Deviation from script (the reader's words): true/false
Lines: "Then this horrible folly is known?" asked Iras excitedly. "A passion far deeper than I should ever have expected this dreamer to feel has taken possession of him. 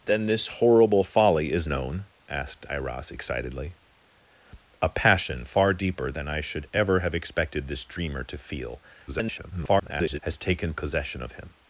true